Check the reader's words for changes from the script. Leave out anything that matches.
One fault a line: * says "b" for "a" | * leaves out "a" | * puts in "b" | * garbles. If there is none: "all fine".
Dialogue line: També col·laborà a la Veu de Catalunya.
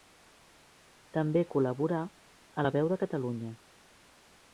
all fine